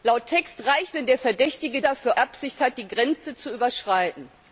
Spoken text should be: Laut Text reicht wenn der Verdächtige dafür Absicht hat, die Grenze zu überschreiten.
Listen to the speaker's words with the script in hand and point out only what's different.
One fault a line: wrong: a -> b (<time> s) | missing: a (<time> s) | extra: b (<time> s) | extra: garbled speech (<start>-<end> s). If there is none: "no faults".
no faults